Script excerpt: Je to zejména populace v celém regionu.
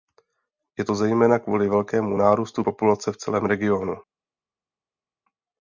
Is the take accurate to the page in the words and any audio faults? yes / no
no